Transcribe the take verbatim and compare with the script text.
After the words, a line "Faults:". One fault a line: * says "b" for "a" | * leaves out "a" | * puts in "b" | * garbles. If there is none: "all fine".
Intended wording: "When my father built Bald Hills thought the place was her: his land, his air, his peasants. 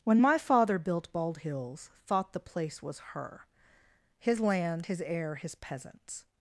"When my father built Bald Hills thought the place was her: his land, his air, his peasants.
Faults:
all fine